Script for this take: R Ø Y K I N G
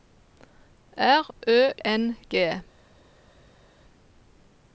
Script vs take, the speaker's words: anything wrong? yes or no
yes